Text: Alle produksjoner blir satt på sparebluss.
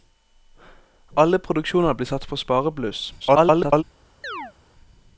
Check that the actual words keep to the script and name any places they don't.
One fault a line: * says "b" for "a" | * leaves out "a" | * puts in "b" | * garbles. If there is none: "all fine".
* garbles